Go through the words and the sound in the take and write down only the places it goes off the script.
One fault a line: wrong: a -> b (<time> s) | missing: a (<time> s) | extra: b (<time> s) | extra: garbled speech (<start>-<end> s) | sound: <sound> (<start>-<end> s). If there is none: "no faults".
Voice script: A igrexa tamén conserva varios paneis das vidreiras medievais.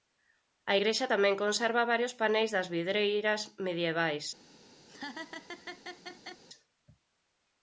sound: laugh (4.9-6.4 s)